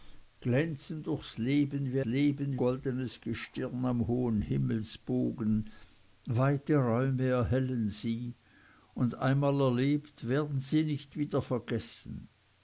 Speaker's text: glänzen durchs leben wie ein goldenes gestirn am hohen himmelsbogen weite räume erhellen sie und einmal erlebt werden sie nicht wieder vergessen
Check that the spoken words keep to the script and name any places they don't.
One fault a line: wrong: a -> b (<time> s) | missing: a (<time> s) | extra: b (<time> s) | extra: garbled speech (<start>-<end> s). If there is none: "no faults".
wrong: ein -> leben (2.0 s)